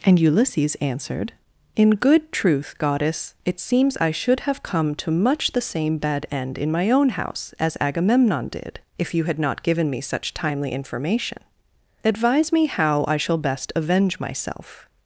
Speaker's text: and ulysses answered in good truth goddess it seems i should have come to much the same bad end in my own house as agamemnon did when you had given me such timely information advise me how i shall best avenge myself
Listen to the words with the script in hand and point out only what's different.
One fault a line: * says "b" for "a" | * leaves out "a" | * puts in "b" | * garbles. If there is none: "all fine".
* says "if" for "when"
* puts in "not"